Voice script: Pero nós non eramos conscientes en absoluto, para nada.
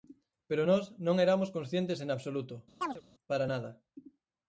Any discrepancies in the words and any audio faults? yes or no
yes